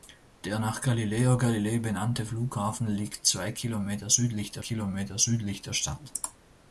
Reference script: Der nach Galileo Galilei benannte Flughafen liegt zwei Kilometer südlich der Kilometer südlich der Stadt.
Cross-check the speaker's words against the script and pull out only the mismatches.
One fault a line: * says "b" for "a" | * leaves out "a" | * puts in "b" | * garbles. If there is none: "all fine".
all fine